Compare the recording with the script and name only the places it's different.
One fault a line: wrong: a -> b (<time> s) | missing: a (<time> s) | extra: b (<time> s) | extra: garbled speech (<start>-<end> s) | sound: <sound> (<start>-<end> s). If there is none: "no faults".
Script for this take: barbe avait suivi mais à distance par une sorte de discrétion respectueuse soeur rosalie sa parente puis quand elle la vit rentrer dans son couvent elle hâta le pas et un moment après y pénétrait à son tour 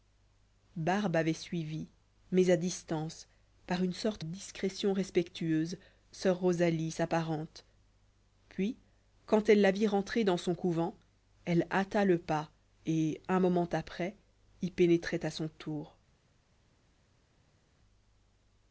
missing: de (4.2 s)